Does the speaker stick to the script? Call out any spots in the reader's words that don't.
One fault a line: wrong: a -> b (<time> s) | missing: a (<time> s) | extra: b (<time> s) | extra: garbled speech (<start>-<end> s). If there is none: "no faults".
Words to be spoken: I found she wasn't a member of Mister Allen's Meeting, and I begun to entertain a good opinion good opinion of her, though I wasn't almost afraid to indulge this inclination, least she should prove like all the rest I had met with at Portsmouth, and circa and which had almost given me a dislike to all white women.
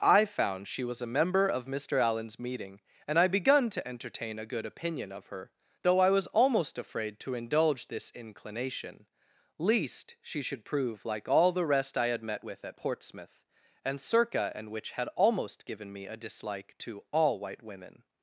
wrong: wasn't -> was (0.8 s)
missing: good opinion (5.1 s)
wrong: wasn't -> was (6.1 s)